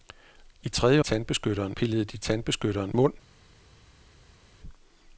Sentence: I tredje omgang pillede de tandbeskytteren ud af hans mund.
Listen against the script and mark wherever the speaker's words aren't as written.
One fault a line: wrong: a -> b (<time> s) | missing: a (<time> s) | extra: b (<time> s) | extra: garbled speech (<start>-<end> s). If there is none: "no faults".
wrong: omgang -> tandbeskytteren (1.0 s)
missing: ud af hans (2.9 s)